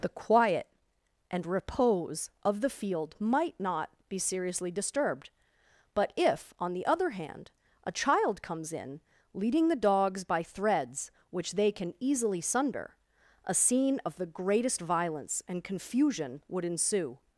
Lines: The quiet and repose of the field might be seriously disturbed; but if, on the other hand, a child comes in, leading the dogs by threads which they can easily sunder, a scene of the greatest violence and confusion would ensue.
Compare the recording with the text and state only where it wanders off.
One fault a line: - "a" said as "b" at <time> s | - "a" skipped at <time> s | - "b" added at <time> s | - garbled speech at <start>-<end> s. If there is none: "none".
- "not" added at 3.6 s